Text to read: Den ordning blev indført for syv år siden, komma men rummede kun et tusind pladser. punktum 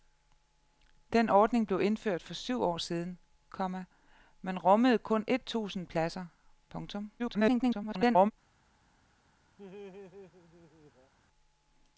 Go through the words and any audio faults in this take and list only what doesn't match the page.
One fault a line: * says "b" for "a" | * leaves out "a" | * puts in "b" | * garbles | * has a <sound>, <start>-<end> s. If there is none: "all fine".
* garbles
* has a laugh, 9.6-11.1 s